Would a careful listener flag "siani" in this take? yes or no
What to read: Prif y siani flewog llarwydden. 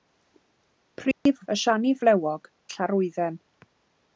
no